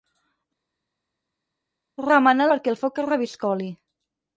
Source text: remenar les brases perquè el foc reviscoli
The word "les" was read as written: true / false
false